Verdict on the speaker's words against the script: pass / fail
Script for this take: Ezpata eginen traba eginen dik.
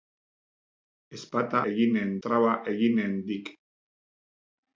pass